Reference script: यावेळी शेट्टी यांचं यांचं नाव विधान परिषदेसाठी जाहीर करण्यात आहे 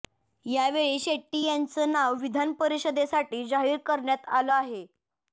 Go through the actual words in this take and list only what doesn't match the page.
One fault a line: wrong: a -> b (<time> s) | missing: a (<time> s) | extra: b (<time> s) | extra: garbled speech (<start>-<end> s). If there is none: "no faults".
missing: यांचं (1.9 s)
extra: आलं (4.3 s)